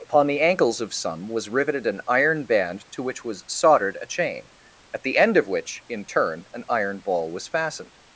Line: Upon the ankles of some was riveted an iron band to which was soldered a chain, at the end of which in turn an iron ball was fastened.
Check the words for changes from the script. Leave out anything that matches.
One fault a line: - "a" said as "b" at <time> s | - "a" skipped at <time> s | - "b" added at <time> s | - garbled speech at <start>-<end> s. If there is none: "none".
none